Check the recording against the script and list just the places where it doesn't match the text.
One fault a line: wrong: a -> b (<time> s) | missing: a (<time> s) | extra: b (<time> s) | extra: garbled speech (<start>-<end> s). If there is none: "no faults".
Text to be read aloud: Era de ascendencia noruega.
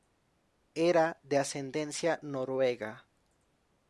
no faults